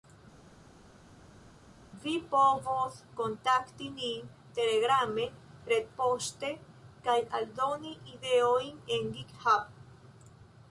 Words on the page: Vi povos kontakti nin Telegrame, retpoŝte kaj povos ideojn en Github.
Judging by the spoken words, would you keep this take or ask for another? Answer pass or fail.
fail